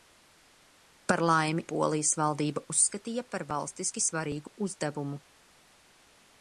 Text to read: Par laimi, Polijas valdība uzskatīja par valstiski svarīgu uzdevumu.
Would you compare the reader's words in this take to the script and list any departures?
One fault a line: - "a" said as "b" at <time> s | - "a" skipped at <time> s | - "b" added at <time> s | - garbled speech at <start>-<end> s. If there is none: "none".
none